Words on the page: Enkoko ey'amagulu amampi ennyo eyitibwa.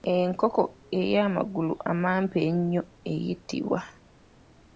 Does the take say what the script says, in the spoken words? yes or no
yes